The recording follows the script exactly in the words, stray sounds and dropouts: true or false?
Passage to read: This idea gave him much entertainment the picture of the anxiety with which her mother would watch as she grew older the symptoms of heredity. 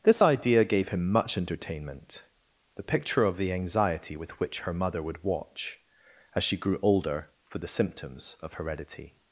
false